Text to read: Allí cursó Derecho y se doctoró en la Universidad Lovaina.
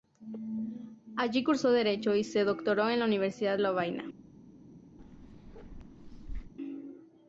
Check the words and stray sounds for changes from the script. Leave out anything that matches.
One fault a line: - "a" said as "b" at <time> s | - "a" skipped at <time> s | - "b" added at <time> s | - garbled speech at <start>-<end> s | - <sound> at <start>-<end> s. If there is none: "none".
- bark at 5.0-6.5 s